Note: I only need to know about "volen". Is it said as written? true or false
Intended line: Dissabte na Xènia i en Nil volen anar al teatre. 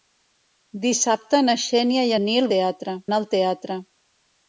false